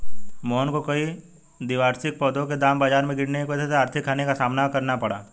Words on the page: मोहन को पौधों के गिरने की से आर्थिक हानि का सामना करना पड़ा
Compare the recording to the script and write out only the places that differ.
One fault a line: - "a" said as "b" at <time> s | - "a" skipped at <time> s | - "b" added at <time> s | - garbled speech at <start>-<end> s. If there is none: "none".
- "कई द्विवार्षिक" added at 0.8 s
- "दाम बाजार में" added at 2.6 s
- "वजह" added at 3.5 s